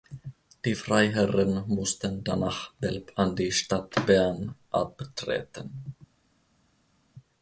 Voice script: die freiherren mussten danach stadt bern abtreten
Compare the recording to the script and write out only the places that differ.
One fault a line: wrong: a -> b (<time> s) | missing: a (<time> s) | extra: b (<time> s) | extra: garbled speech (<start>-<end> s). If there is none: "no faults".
extra: belp an die (2.7 s)